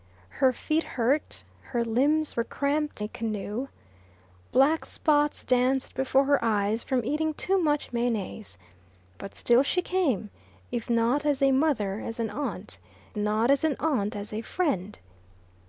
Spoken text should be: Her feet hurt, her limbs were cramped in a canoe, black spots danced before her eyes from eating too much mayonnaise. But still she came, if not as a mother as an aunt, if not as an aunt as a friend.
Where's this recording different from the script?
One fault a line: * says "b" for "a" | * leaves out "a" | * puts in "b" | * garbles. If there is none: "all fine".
* leaves out "in"
* leaves out "if"